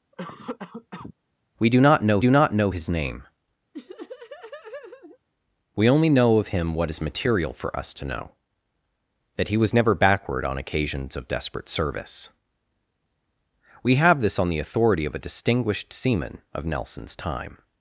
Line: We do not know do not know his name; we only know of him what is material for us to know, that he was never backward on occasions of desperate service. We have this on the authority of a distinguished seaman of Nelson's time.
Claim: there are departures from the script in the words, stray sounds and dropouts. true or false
true